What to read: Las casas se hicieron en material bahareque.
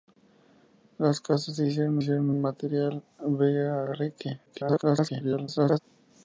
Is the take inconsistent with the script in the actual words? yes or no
yes